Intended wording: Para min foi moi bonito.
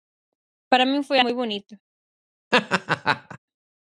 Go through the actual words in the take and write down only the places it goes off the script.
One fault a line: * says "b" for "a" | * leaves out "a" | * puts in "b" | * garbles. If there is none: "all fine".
all fine